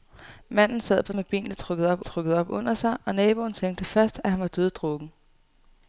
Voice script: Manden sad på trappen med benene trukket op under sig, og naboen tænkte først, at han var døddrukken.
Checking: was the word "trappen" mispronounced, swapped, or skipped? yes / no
yes